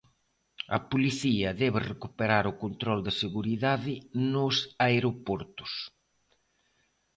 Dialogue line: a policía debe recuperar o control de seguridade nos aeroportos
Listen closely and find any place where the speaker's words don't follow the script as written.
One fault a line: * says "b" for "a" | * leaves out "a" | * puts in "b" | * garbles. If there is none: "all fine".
all fine